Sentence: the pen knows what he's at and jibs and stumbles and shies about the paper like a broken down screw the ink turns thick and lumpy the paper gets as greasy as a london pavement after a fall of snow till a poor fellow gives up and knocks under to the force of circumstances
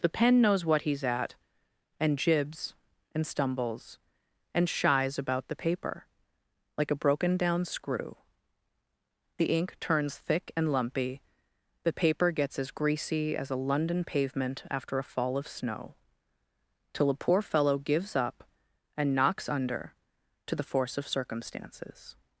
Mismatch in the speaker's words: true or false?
false